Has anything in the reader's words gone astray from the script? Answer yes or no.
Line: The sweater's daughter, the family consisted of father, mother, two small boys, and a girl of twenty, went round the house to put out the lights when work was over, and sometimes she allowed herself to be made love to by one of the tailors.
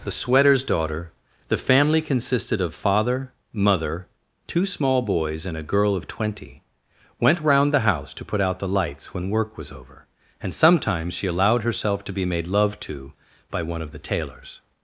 no